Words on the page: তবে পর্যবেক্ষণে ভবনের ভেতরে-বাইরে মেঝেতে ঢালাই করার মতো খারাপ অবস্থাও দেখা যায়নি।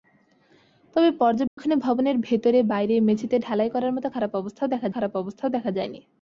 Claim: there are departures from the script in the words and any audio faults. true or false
true